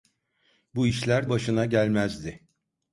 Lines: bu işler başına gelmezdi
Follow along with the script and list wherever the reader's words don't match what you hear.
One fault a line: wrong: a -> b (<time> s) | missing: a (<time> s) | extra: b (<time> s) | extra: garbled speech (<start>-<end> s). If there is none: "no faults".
no faults